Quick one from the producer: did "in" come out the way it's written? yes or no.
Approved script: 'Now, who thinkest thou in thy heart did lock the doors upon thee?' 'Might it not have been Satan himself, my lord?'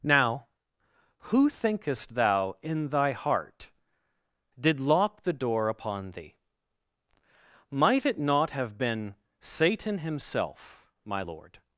yes